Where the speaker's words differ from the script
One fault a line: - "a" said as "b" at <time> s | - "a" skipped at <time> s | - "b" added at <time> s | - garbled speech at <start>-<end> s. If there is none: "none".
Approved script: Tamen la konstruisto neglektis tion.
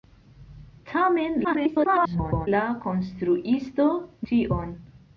- garbled speech at 1.4-2.5 s
- "neglektis" skipped at 3.9 s